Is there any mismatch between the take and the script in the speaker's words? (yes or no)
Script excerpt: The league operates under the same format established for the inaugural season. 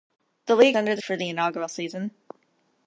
yes